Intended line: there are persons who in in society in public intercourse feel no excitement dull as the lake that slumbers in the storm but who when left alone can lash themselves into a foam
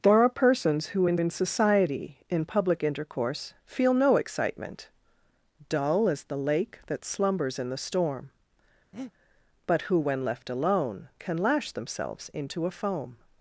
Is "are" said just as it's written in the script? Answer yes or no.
yes